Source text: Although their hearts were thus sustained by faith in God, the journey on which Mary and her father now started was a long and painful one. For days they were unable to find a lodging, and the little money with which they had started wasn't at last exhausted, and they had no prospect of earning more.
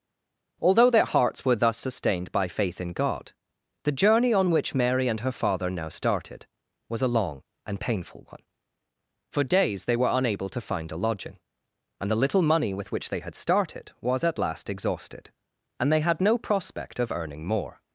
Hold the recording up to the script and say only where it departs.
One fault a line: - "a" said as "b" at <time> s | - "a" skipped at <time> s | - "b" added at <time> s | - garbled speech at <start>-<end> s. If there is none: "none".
- "wasn't" said as "was" at 14.0 s